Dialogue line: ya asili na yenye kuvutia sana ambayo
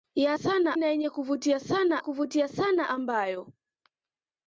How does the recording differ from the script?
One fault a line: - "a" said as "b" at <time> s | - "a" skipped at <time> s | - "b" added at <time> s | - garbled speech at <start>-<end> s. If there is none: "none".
- "asili" said as "sana" at 0.3 s
- "kuvutia sana" added at 2.0 s